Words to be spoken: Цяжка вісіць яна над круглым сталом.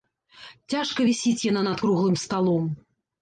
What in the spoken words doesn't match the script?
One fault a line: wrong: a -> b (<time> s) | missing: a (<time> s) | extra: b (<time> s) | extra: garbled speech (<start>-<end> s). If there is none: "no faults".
no faults